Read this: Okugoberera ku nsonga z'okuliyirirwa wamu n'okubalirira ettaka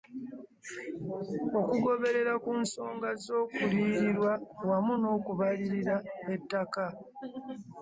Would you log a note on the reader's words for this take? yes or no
no